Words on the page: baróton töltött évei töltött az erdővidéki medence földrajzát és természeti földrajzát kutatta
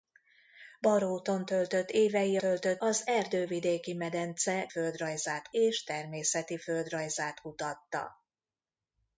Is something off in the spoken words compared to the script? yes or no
no